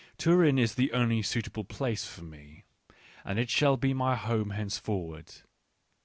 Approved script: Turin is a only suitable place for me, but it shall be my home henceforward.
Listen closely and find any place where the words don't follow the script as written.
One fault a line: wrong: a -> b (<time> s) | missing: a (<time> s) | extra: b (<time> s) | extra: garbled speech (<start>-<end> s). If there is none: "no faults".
wrong: a -> the (0.7 s)
wrong: but -> and (3.3 s)